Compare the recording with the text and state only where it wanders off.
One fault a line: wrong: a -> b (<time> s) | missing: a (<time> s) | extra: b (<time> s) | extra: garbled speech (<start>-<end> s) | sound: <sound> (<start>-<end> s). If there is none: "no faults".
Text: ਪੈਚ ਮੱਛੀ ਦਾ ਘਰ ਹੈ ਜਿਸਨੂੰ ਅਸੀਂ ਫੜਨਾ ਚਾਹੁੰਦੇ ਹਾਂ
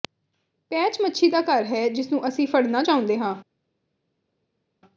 no faults